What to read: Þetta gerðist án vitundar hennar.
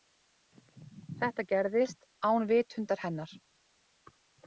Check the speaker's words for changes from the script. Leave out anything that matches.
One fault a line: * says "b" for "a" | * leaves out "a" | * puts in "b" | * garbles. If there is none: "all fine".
all fine